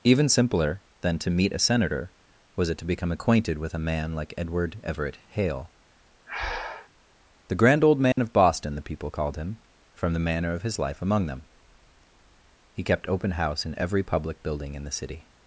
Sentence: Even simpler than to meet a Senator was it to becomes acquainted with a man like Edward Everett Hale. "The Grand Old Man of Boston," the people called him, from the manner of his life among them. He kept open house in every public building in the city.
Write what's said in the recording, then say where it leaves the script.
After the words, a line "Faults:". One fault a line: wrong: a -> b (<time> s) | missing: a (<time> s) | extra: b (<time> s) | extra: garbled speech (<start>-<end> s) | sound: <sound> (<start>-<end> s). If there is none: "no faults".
Even simpler than to meet a Senator was it to become acquainted with a man like Edward Everett Hale. "The Grand Old Man of Boston," the people called him, from the manner of his life among them. He kept open house in every public building in the city.
Faults:
wrong: becomes -> become (2.9 s)
sound: breath (6.3-6.9 s)
sound: dropout (8.1-8.2 s)